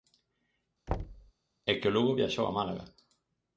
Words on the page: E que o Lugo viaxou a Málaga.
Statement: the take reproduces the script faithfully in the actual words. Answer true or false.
true